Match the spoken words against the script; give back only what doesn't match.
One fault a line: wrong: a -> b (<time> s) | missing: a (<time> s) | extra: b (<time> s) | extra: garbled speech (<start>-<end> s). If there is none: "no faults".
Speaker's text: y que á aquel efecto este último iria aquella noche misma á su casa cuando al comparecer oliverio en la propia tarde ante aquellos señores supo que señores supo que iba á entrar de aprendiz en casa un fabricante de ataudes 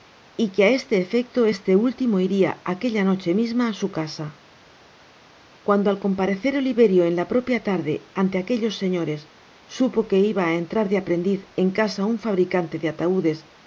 wrong: aquel -> este (0.8 s)
missing: señores supo que (10.2 s)